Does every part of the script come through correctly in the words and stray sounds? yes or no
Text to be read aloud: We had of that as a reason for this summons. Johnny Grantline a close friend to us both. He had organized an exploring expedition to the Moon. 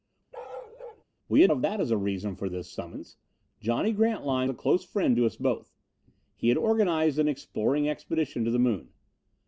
no